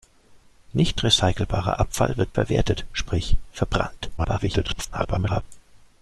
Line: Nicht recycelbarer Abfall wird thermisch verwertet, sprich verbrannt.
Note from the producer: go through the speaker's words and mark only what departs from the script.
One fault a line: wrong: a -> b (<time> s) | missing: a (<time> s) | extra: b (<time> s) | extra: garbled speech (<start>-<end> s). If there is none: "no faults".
missing: thermisch (2.4 s)
extra: garbled speech (4.2-5.4 s)